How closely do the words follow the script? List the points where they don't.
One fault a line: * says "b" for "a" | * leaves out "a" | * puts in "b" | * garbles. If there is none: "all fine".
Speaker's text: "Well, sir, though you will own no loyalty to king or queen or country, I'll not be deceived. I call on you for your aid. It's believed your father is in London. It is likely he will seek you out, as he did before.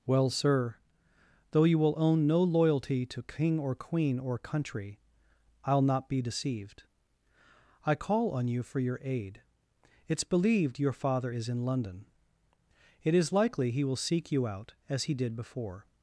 all fine